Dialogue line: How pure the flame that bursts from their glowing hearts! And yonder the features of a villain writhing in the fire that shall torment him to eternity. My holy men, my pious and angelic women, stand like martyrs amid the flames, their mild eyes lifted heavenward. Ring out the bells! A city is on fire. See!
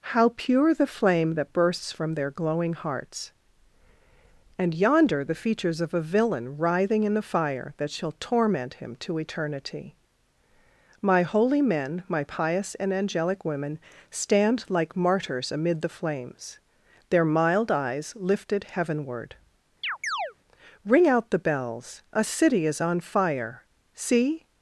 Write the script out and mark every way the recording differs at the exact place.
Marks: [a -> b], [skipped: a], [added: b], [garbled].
How pure the flame that bursts from their glowing hearts! And yonder the features of a villain writhing in the fire that shall torment him to eternity. My holy men, my pious and angelic women, stand like martyrs amid the flames, their mild eyes lifted heavenward. Ring out the bells! A city is on fire. See!